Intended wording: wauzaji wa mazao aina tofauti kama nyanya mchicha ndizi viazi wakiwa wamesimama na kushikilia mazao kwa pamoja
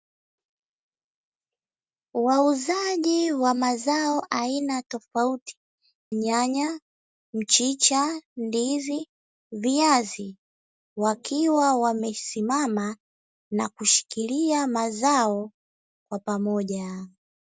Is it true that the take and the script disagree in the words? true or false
true